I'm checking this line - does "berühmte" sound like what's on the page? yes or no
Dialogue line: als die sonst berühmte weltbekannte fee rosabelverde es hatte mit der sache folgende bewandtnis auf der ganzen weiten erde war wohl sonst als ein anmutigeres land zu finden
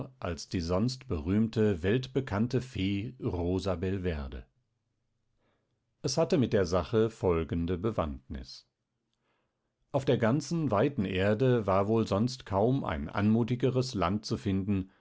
yes